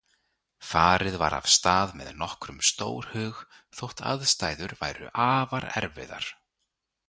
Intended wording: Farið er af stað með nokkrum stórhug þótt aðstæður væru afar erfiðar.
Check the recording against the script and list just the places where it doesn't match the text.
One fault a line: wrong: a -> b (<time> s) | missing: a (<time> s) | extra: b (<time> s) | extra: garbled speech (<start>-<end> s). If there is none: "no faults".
wrong: er -> var (1.2 s)